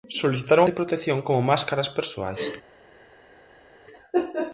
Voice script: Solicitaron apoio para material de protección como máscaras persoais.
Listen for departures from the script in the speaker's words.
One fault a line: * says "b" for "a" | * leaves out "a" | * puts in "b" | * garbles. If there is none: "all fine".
* leaves out "apoio para material"